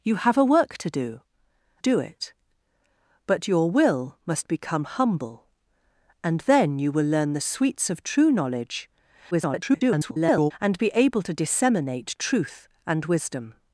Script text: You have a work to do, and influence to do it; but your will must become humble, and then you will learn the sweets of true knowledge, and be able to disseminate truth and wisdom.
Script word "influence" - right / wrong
wrong